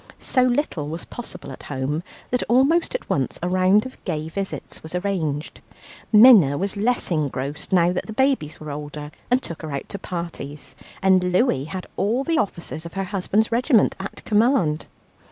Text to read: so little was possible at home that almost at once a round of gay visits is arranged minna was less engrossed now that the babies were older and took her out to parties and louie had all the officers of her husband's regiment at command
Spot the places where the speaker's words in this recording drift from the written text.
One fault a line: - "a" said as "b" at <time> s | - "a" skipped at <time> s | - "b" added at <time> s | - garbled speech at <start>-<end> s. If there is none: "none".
- "is" said as "was" at 4.8 s